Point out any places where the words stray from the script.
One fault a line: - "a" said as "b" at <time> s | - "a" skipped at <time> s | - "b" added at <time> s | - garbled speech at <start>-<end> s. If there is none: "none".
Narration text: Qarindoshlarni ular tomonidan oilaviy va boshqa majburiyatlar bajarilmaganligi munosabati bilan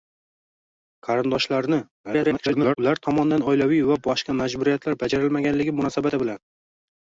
- garbled speech at 2.0-2.8 s